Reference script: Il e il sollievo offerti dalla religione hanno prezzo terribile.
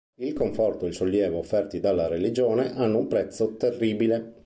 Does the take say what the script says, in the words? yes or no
no